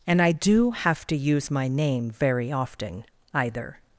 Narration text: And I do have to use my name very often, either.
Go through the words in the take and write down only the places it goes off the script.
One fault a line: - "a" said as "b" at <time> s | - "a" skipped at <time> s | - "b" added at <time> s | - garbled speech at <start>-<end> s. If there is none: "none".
none